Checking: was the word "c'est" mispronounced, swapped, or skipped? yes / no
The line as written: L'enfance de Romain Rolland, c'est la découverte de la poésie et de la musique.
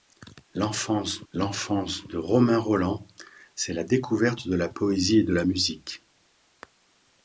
no